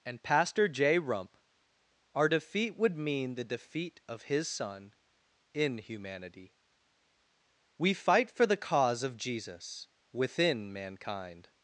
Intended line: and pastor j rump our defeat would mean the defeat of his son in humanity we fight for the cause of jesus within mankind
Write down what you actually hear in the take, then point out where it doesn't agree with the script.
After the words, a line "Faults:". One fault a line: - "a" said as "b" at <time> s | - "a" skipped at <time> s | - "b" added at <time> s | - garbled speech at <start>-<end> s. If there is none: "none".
and pastor j rump our defeat would mean the defeat of his son in humanity we fight for the cause of jesus within mankind
Faults:
none